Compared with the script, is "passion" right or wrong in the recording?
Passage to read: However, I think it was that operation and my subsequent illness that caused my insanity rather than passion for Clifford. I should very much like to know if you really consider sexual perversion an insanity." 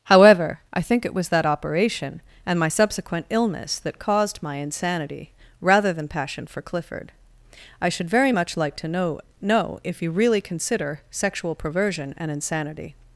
right